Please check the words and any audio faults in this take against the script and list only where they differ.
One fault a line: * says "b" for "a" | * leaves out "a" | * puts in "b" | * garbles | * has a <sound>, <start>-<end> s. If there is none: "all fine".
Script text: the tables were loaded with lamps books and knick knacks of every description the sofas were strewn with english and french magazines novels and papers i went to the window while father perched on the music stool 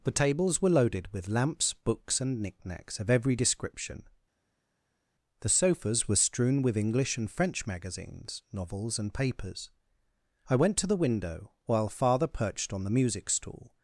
all fine